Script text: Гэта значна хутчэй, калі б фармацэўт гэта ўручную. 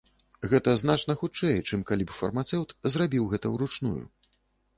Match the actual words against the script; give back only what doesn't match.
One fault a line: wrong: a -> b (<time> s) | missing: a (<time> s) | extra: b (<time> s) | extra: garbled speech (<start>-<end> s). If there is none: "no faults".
extra: чым (1.7 s)
extra: зрабіў (3.0 s)